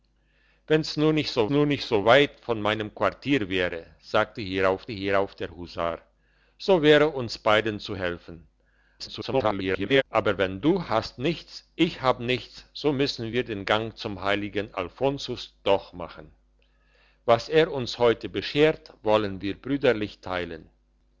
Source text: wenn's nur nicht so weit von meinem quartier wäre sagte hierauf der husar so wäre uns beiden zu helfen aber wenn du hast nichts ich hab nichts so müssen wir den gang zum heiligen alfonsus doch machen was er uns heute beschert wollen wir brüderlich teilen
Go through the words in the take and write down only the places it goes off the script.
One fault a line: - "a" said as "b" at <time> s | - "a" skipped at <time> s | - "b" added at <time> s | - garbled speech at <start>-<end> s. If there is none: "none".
- "nur nicht so" added at 1.5 s
- "hierauf" added at 4.9 s
- garbled speech at 9.0-10.0 s